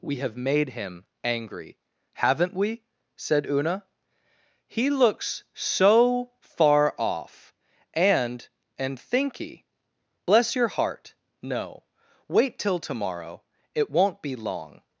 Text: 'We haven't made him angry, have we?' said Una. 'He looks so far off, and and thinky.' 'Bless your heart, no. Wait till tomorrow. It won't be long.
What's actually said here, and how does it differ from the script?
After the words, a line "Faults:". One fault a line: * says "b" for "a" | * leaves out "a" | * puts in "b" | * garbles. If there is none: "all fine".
'We have made him angry, haven't we?' said Una. 'He looks so far off, and and thinky.' 'Bless your heart, no. Wait till tomorrow. It won't be long.
Faults:
* says "have" for "haven't"
* says "haven't" for "have"